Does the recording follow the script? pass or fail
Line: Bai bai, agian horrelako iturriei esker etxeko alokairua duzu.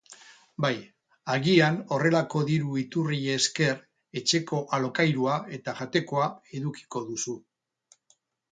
fail